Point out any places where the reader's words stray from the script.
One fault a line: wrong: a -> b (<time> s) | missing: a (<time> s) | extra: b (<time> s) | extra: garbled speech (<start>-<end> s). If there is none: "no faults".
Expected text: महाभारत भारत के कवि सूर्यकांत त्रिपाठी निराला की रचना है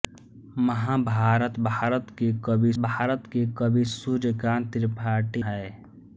wrong: सूर्यकांत त्रिपाठी निराला की रचना -> भारत के कवि सूर्यकांत त्रिपाठी (2.8 s)